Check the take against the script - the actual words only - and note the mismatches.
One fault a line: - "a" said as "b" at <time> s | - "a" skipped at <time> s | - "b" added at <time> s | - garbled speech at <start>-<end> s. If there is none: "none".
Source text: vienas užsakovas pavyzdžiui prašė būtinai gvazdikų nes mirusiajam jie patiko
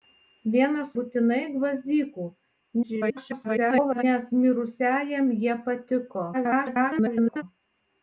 - "užsakovas pavyzdžiui prašė" skipped at 0.9 s
- garbled speech at 2.8-4.0 s
- garbled speech at 6.3-7.4 s